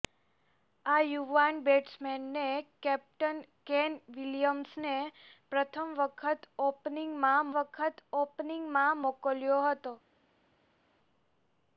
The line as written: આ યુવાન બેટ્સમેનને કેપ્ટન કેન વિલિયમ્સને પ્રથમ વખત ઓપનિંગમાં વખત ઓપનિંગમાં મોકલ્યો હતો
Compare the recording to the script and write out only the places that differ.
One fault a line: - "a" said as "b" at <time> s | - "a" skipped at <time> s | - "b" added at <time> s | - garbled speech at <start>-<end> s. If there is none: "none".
none